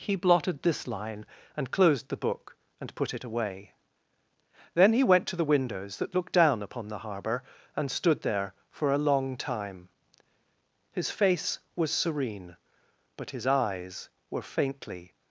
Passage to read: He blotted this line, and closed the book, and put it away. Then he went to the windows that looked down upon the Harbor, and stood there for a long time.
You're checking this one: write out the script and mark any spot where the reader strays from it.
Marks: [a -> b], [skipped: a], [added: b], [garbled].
He blotted this line, and closed the book, and put it away. Then he went to the windows that looked down upon the Harbor, and stood there for a long time. [added: His face was serene but his eyes were faintly]